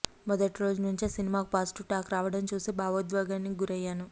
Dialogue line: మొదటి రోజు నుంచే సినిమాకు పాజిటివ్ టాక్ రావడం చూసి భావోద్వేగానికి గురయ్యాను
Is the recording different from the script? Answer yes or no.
no